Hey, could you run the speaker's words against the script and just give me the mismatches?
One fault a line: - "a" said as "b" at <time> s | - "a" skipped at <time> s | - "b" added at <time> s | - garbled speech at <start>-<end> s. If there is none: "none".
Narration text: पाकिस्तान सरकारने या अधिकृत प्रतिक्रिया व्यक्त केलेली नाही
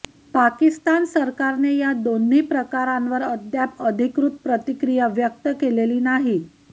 - "दोन्ही प्रकारांवर अद्याप" added at 2.0 s